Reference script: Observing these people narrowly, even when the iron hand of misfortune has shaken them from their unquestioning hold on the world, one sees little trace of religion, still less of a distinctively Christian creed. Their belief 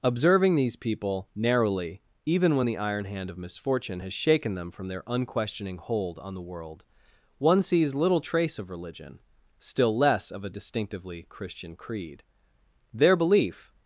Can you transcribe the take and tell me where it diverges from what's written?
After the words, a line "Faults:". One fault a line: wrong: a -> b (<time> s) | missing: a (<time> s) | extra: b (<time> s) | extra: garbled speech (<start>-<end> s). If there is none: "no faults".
Observing these people narrowly, even when the iron hand of misfortune has shaken them from their unquestioning hold on the world, one sees little trace of religion, still less of a distinctively Christian creed. Their belief
Faults:
no faults